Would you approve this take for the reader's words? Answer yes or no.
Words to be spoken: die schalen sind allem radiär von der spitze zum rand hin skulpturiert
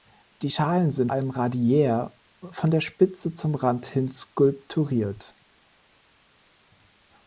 yes